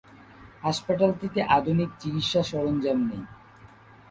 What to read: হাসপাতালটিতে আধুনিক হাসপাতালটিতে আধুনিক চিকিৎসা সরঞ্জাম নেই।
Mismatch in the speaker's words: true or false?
true